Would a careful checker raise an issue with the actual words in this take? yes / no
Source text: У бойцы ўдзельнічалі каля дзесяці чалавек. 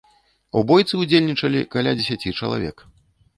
no